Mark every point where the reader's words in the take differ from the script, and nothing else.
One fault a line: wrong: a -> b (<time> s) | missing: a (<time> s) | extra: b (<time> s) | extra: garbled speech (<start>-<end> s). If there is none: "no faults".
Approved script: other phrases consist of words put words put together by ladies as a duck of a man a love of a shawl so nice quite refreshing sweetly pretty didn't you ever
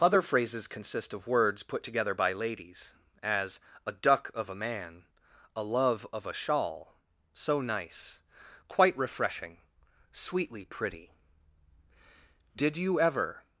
missing: words put (1.8 s)
wrong: didn't -> did (12.6 s)